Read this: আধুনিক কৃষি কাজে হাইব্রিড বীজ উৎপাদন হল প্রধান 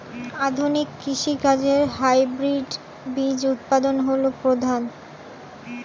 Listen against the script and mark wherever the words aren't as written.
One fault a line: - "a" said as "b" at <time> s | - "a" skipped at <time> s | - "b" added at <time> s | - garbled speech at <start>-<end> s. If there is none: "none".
none